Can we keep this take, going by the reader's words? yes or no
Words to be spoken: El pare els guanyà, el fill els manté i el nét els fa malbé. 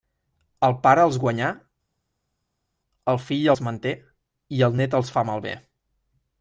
yes